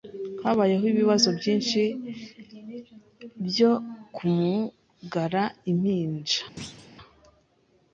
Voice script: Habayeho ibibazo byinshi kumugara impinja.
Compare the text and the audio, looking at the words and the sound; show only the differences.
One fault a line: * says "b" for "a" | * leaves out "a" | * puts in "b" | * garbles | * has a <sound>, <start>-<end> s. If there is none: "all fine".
* puts in "byo"
* has a thud, 6.6-6.9 s